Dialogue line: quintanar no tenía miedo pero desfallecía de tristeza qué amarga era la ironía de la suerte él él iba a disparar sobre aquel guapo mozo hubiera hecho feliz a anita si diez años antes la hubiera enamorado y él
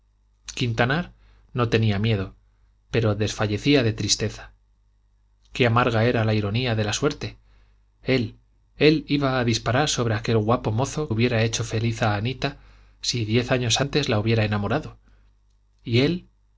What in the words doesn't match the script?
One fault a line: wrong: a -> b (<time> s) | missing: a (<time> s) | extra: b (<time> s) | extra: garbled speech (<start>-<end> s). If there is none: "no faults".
no faults